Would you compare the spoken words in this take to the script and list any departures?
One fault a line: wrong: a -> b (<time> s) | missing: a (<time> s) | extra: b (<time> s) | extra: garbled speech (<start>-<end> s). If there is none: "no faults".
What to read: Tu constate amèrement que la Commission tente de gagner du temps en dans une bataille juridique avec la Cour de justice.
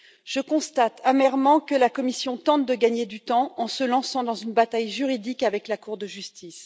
wrong: Tu -> Je (0.2 s)
extra: se lançant (3.7 s)